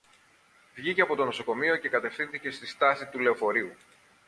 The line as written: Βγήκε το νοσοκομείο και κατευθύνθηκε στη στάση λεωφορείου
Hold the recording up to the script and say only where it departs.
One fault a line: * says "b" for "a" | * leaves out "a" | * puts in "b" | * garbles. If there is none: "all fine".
* puts in "από"
* puts in "του"